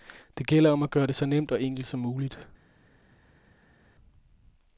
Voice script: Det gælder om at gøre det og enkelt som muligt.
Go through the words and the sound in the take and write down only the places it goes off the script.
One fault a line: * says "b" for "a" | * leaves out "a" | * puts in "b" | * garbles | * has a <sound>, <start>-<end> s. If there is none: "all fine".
* puts in "så nemt"